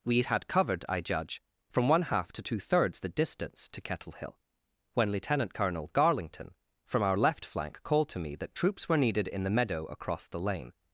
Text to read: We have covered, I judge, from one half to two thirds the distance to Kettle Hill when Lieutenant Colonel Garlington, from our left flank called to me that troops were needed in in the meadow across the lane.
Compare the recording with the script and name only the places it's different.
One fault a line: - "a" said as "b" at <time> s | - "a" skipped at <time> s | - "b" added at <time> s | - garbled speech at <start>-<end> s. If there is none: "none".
- "have" said as "had" at 0.2 s
- "in" skipped at 9.4 s